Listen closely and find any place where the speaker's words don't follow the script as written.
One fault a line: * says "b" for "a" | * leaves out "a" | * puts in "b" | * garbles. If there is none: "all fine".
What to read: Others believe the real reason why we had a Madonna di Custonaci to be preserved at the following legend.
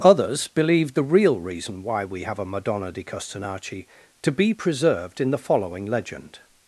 * says "have" for "had"
* says "in" for "at"